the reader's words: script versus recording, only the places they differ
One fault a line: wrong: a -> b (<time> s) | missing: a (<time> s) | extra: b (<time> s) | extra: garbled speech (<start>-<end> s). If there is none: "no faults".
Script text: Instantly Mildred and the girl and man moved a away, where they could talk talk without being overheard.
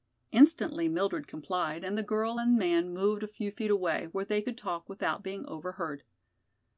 extra: complied (1.3 s)
extra: few feet (3.3 s)
missing: talk (4.9 s)